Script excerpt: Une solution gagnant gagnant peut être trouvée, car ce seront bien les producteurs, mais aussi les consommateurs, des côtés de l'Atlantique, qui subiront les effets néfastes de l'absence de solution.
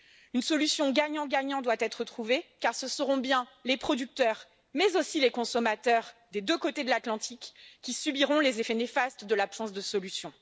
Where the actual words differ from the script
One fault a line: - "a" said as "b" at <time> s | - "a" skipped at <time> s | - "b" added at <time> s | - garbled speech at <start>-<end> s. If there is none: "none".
- "peut" said as "doit" at 1.6 s
- "deux" added at 6.4 s